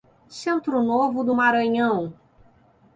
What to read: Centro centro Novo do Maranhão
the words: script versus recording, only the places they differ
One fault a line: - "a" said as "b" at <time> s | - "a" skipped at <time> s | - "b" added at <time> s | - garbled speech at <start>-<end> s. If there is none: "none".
- "centro" skipped at 0.8 s